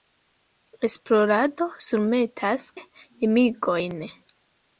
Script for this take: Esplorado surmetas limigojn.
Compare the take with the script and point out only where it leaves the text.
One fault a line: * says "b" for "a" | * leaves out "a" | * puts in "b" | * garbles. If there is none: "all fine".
all fine